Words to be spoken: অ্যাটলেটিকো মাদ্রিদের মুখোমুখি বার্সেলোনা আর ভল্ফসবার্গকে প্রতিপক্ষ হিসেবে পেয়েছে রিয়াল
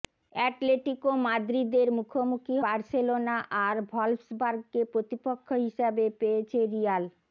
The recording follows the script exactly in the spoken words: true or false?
true